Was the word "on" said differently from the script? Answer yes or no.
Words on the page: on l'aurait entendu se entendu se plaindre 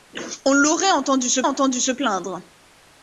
no